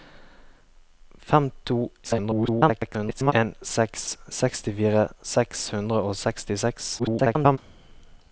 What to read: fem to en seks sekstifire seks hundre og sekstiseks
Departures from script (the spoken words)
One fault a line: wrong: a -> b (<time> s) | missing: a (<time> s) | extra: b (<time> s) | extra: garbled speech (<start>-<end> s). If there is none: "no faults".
extra: garbled speech (2.0-3.3 s)
extra: garbled speech (7.0-7.6 s)